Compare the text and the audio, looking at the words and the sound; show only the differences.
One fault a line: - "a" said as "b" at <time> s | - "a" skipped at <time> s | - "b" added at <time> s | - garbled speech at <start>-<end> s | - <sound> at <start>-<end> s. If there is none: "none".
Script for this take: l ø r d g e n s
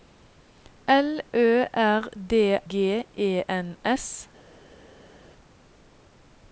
none